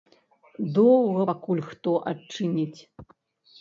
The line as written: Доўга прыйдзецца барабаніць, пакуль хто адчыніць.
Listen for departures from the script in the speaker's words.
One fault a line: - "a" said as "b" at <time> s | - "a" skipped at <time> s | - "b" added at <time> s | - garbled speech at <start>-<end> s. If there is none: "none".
- "прыйдзецца барабаніць" skipped at 1.2 s